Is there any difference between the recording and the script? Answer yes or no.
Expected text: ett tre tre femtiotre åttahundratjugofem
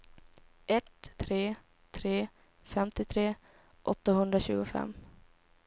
no